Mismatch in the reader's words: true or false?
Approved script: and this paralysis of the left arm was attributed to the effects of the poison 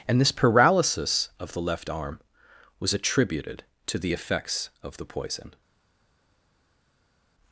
false